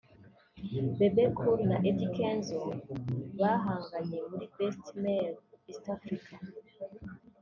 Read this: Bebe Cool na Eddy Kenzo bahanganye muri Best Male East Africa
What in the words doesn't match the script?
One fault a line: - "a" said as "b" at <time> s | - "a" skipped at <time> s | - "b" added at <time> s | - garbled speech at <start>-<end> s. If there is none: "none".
none